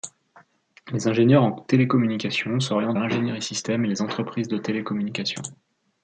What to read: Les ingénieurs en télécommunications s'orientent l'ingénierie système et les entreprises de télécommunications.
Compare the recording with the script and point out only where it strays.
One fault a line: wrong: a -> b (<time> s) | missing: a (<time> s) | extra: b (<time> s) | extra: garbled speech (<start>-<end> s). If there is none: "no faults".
no faults